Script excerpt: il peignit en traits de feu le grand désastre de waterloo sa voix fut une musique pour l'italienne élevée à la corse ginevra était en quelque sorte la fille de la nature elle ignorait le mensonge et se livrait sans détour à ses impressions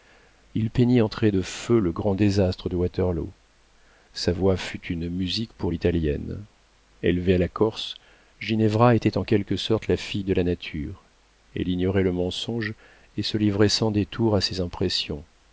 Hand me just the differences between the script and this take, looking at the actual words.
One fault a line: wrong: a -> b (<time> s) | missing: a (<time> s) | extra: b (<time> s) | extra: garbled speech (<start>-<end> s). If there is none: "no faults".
no faults